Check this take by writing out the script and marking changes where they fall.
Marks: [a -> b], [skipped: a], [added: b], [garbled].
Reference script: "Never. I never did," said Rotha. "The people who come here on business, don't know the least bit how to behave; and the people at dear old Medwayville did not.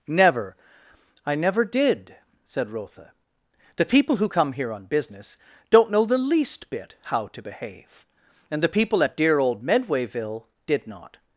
"Never. I never did," said Rotha. "The people who come here on business, don't know the least bit how to behave; and the people at dear old Medwayville did not.